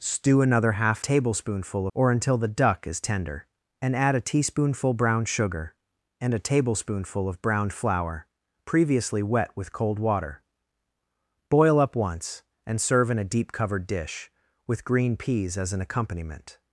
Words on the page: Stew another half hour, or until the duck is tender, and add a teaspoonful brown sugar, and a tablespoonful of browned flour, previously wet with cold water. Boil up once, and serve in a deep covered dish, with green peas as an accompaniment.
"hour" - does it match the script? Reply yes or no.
no